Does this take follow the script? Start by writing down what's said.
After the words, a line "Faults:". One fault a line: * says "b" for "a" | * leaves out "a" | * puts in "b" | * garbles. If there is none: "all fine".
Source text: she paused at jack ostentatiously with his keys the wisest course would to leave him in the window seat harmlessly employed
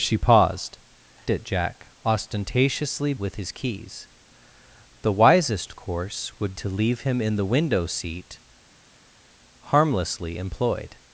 she paused at jack ostentatiously with his keys the wisest course would to leave him in the window seat harmlessly employed
Faults:
all fine